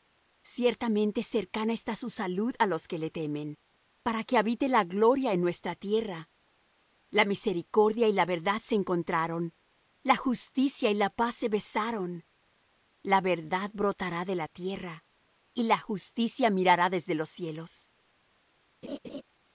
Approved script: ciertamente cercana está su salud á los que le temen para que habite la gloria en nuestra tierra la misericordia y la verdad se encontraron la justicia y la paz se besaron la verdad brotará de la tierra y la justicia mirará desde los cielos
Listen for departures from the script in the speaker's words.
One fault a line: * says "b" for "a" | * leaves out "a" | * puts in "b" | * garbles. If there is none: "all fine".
all fine